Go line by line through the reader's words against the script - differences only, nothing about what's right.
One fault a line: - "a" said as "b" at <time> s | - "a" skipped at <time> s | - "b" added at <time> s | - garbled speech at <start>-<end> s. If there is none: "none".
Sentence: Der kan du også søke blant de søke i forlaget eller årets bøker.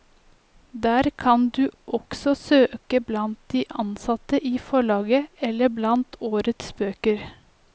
- "søke" said as "ansatte" at 3.8 s
- "blant" added at 5.7 s